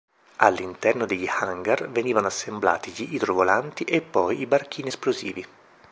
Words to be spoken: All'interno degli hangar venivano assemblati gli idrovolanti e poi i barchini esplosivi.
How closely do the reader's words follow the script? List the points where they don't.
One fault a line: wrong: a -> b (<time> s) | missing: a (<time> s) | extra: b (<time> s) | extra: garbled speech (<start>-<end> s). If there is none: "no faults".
no faults